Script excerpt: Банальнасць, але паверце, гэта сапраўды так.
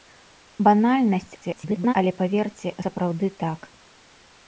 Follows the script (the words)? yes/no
no